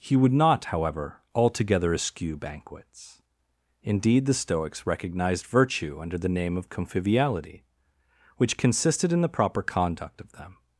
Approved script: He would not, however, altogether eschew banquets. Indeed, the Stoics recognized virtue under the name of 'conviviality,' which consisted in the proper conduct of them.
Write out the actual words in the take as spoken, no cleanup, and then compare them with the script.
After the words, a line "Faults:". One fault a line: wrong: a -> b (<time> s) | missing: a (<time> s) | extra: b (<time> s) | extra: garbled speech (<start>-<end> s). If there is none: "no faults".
He would not, however, altogether eschew banquets. Indeed, the Stoics recognized virtue under the name of 'conviviality,' which consisted in the proper conduct of them.
Faults:
no faults